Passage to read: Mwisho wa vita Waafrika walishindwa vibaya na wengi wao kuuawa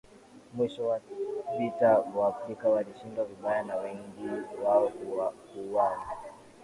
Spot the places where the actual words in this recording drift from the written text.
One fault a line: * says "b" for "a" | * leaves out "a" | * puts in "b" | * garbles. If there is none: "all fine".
all fine